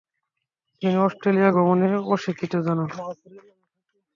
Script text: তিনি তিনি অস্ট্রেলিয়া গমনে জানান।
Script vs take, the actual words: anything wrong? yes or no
yes